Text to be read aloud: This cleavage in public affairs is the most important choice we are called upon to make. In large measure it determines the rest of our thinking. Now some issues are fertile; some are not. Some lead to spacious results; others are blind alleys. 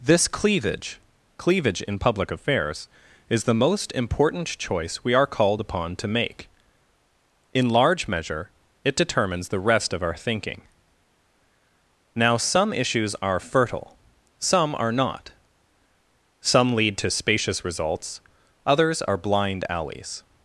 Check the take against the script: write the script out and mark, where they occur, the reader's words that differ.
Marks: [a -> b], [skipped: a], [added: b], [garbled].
This cleavage [added: cleavage] in public affairs is the most important choice we are called upon to make. In large measure it determines the rest of our thinking. Now some issues are fertile; some are not. Some lead to spacious results; others are blind alleys.